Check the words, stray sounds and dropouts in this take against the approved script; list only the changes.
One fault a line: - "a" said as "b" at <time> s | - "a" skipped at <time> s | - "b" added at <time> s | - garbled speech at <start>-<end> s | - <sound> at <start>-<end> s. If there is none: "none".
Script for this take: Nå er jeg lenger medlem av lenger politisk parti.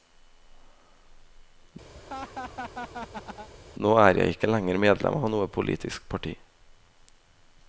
- laugh at 1.9-3.5 s
- "ikke" added at 4.3 s
- "lenger" said as "noe" at 5.3 s